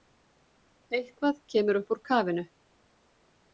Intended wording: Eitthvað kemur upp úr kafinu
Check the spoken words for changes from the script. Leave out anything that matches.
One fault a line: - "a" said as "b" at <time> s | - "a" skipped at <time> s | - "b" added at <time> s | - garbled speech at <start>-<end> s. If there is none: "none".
none